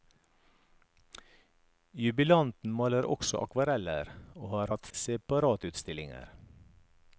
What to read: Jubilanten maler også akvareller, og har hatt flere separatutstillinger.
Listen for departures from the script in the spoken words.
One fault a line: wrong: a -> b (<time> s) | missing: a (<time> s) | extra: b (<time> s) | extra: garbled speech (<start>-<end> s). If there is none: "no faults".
missing: flere (4.9 s)